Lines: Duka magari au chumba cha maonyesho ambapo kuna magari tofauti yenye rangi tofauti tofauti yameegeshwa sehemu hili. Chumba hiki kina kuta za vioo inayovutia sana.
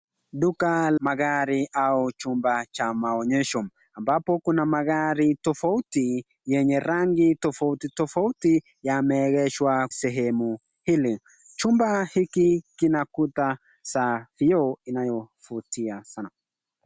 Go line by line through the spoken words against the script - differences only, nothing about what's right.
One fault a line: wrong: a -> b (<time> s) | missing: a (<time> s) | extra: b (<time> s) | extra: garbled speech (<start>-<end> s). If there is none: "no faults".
no faults